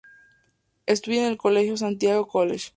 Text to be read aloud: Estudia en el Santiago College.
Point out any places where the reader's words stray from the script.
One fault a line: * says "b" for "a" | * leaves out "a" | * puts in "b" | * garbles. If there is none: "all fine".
* puts in "colegio"